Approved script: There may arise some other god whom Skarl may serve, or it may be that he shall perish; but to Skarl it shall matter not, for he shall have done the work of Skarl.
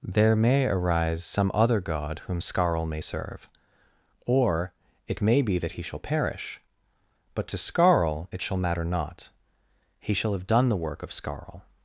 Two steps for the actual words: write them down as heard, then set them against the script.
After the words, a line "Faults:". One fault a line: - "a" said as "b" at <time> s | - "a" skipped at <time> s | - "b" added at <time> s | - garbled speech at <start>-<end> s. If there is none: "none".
There may arise some other god whom Skarl may serve, or it may be that he shall perish; but to Skarl it shall matter not, he shall have done the work of Skarl.
Faults:
- "for" skipped at 9.3 s